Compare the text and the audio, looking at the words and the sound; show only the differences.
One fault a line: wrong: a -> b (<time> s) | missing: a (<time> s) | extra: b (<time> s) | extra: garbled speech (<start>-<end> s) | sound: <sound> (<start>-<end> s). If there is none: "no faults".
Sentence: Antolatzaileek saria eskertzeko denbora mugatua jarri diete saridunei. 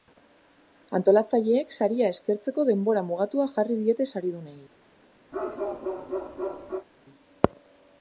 sound: bark (5.3-6.9 s)